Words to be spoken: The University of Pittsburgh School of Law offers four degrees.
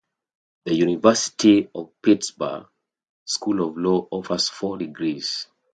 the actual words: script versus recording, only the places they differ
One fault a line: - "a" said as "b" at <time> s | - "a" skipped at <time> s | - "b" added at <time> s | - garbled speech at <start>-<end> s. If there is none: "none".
none